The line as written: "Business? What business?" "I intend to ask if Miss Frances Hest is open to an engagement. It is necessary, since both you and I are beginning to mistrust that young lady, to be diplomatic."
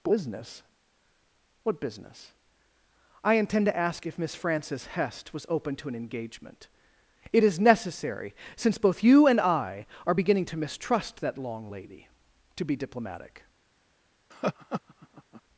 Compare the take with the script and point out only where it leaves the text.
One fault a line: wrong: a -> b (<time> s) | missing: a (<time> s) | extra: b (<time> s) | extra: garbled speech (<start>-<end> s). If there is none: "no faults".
wrong: is -> was (5.3 s)
wrong: young -> long (11.4 s)